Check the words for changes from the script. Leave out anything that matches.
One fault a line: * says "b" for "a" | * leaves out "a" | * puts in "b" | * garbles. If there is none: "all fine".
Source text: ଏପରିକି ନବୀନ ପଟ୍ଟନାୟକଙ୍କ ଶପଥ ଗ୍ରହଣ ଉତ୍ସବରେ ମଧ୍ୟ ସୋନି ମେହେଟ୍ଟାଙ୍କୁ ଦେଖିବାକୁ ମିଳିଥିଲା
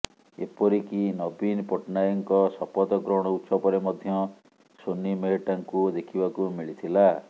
all fine